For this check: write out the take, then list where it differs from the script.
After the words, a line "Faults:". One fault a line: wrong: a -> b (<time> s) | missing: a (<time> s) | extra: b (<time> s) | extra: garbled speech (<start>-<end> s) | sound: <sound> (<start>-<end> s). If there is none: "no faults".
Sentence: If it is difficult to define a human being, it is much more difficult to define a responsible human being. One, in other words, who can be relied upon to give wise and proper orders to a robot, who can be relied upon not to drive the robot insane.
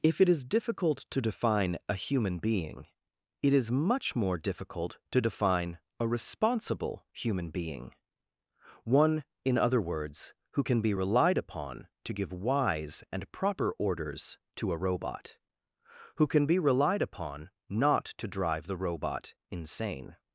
If it is difficult to define a human being, it is much more difficult to define a responsible human being. One, in other words, who can be relied upon to give wise and proper orders to a robot, who can be relied upon not to drive the robot insane.
Faults:
no faults